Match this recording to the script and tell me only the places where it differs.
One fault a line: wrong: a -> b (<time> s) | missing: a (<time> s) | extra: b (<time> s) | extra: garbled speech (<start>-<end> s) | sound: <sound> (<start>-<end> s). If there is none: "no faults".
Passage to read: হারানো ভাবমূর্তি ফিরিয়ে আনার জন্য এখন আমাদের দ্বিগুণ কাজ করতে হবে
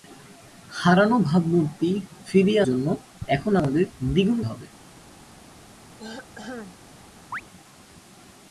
missing: আনার (2.6 s)
missing: কাজ করতে (4.4 s)
sound: throat clearing (6.0-6.8 s)
sound: chirp (7.3-7.4 s)